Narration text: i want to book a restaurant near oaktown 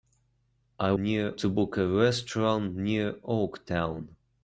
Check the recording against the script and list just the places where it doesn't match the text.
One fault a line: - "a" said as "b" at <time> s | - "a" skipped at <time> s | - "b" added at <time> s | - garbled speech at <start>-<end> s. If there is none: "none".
- "want" said as "near" at 1.0 s